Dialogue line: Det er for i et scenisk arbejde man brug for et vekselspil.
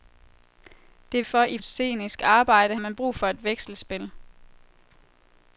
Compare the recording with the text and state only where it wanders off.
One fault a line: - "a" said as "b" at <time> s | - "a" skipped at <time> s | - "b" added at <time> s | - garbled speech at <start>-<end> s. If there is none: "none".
none